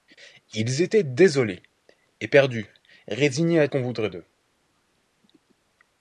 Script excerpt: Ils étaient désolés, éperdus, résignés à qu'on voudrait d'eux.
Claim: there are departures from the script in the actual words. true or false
false